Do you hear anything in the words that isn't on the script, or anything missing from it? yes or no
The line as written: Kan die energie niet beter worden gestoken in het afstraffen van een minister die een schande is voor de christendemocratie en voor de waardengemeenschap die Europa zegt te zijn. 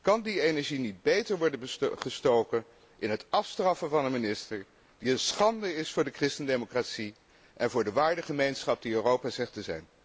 no